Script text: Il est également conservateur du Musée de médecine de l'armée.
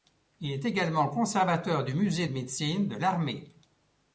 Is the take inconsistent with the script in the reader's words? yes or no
no